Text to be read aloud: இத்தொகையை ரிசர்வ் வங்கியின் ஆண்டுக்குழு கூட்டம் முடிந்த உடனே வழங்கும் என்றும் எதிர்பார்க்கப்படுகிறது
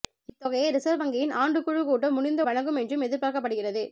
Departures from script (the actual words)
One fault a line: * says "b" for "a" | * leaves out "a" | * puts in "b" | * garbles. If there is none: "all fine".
* leaves out "உடனே"